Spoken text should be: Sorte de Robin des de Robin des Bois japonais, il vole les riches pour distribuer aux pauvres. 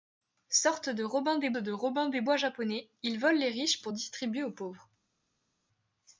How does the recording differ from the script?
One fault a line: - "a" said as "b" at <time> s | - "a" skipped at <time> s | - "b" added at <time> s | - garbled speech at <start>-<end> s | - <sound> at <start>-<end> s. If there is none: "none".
none